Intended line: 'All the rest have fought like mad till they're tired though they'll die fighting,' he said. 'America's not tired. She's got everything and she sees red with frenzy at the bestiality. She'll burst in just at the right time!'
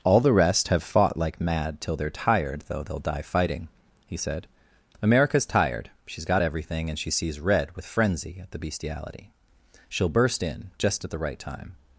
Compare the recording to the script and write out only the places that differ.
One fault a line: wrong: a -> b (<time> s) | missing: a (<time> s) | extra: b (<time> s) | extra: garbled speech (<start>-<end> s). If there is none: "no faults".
missing: not (5.5 s)